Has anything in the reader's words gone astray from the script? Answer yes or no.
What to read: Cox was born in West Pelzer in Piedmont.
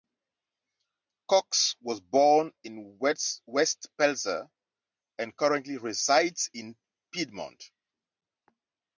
yes